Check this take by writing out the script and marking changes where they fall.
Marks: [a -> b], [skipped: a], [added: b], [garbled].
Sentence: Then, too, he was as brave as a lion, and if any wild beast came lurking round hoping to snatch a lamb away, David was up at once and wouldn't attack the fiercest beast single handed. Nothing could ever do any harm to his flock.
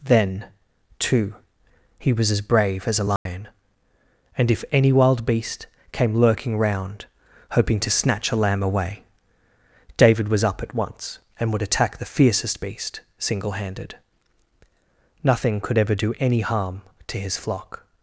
Then, too, he was as brave as a lion, and if any wild beast came lurking round hoping to snatch a lamb away, David was up at once and [wouldn't -> would] attack the fiercest beast single handed. Nothing could ever do any harm to his flock.